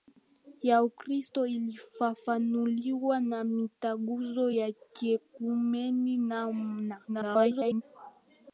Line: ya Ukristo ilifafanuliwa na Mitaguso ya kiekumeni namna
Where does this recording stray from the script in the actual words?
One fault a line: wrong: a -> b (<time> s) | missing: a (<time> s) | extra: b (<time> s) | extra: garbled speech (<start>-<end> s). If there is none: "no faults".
extra: garbled speech (7.1-7.8 s)